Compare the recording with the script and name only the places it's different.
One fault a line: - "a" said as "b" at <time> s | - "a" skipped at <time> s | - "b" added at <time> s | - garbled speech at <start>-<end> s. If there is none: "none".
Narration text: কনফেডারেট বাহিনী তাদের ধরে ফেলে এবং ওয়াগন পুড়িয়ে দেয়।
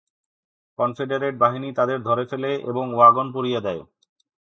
none